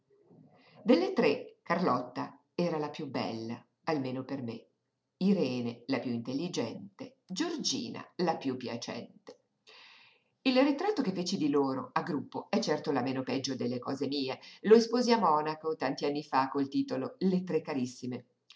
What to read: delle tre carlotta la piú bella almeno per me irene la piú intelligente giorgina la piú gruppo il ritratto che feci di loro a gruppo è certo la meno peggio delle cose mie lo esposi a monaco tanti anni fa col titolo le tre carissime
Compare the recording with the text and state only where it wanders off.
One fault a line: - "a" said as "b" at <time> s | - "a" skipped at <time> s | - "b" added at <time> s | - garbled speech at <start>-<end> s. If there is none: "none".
- "era" added at 2.5 s
- "gruppo" said as "piacente" at 8.6 s